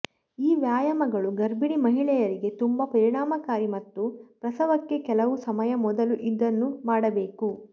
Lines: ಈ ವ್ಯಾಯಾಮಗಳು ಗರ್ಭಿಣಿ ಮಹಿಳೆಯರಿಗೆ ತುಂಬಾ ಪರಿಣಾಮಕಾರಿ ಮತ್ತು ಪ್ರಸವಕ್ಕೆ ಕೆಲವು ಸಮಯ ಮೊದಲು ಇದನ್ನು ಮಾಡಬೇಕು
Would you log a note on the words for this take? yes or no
no